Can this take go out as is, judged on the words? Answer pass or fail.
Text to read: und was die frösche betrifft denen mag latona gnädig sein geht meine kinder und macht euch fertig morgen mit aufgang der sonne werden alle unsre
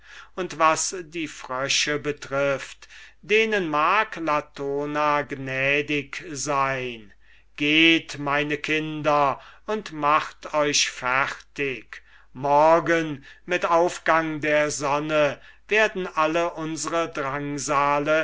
pass